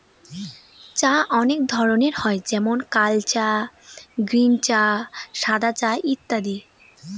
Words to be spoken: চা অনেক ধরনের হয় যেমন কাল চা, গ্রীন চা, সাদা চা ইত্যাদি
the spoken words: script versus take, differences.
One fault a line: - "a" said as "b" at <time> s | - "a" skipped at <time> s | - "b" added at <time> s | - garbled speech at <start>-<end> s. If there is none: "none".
none